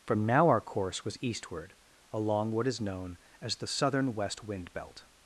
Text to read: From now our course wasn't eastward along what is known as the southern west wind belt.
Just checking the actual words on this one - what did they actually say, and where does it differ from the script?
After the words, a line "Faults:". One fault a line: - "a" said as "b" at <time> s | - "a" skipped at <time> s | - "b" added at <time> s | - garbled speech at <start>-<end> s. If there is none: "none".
From now our course was eastward along what is known as the southern west wind belt.
Faults:
- "wasn't" said as "was" at 1.1 s